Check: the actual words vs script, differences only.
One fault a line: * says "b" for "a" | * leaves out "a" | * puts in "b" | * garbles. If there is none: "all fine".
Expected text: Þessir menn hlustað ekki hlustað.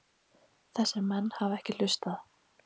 * says "hafa" for "hlustað"